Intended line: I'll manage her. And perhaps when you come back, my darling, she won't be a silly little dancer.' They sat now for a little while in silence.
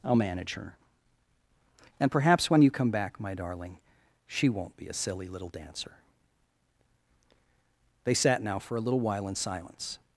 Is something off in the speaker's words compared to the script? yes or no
no